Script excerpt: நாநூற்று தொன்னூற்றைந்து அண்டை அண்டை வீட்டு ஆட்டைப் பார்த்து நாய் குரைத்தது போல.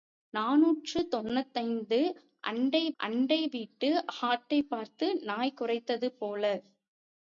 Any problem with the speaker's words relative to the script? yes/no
no